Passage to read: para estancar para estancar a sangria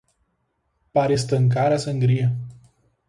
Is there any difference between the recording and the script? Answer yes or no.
yes